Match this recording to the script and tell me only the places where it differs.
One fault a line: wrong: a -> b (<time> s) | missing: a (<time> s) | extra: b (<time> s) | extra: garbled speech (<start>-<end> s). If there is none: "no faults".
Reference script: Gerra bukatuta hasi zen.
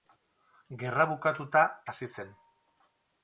no faults